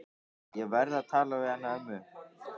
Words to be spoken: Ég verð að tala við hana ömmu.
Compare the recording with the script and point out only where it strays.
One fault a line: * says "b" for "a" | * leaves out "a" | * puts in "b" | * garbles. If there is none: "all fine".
all fine